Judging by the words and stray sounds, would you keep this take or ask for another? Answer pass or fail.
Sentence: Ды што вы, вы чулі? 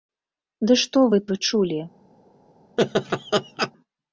fail